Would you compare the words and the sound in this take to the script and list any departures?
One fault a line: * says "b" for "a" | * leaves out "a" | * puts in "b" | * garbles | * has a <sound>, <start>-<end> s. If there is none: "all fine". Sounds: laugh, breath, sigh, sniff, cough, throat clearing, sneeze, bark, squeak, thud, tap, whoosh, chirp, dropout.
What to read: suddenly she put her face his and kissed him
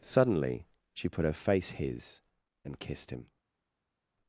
all fine